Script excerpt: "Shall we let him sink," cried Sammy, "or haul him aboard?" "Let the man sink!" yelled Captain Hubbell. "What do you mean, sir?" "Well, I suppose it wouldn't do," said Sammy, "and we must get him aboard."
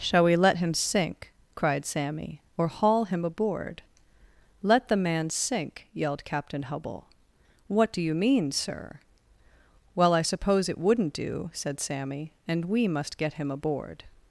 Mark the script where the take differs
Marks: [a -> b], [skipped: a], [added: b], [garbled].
"Shall we let him sink," cried Sammy, "or haul him aboard?" "Let the man sink!" yelled Captain Hubbell. "What do you mean, sir?" "Well, I suppose it wouldn't do," said Sammy, "and we must get him aboard."